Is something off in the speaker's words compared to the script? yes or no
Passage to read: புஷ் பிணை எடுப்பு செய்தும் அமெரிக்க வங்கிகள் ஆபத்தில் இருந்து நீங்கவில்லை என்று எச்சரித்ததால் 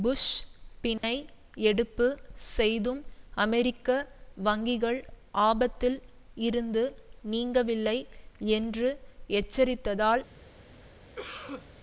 no